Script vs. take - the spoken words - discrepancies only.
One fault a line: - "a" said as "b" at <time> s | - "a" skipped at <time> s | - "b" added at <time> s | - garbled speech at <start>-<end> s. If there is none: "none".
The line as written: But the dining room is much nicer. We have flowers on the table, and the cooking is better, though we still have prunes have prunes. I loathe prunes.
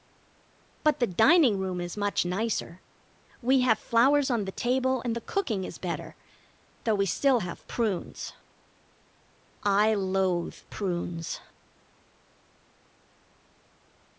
- "have prunes" skipped at 8.3 s